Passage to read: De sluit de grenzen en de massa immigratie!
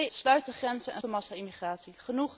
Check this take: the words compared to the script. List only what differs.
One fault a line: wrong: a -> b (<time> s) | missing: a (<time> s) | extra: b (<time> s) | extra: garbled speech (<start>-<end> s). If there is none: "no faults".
no faults